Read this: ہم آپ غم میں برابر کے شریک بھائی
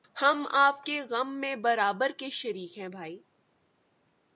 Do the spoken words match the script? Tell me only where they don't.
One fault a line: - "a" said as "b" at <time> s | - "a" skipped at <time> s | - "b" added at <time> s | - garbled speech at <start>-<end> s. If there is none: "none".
- "کے" added at 0.8 s
- "ہیں" added at 2.8 s